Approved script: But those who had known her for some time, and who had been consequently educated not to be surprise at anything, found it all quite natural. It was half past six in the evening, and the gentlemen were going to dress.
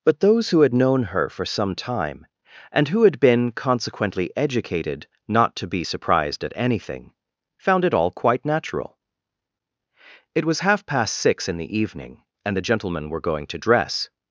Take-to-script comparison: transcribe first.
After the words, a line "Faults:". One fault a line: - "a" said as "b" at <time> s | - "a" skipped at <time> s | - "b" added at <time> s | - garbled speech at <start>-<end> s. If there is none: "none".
But those who had known her for some time, and who had been consequently educated not to be surprised at anything, found it all quite natural. It was half past six in the evening, and the gentlemen were going to dress.
Faults:
- "surprise" said as "surprised" at 5.8 s